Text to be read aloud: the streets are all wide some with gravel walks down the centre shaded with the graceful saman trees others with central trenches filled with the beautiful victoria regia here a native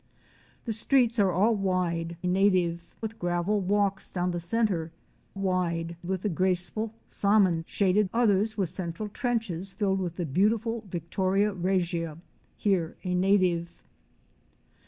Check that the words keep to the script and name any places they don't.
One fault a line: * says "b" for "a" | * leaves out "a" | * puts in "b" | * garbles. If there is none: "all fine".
* says "native" for "some"
* says "wide" for "shaded"
* says "shaded" for "trees"